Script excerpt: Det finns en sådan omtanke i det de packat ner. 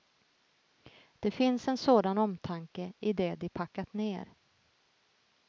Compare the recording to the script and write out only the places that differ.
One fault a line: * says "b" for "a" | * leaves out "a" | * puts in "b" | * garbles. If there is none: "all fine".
all fine